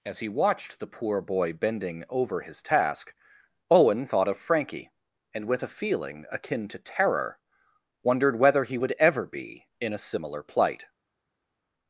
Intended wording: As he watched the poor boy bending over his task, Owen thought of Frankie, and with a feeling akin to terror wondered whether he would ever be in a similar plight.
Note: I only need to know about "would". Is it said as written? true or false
true